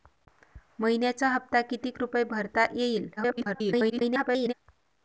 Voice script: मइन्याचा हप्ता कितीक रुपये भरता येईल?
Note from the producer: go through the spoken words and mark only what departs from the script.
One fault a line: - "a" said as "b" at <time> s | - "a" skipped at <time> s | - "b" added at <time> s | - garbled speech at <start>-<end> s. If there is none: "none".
- garbled speech at 3.2-4.5 s